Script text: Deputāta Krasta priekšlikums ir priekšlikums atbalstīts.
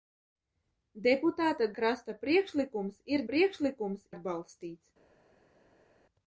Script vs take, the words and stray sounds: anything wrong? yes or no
no